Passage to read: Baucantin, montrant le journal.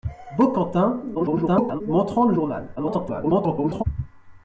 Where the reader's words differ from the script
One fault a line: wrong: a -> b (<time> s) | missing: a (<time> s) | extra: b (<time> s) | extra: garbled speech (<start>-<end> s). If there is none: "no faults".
extra: garbled speech (1.1-1.8 s)
extra: garbled speech (2.8-3.8 s)